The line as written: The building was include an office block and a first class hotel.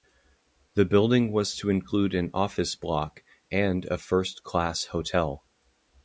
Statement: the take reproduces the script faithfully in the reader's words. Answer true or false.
false